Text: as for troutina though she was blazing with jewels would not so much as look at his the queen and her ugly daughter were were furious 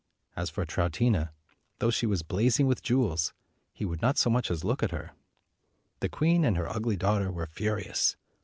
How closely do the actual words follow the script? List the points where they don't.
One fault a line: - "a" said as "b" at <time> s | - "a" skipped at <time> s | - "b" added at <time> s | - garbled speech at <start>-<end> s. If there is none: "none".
- "he" added at 3.7 s
- "his" said as "her" at 4.9 s
- "were" skipped at 7.5 s